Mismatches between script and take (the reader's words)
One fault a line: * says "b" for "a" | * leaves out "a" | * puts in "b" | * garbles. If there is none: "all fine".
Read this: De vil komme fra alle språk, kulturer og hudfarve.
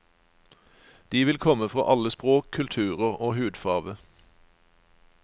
all fine